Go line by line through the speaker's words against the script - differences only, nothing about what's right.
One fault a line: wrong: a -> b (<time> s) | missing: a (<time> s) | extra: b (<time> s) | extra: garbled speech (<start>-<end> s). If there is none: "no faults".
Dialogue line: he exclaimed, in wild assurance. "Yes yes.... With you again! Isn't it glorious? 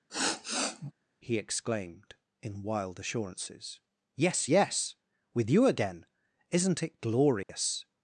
wrong: assurance -> assurances (3.0 s)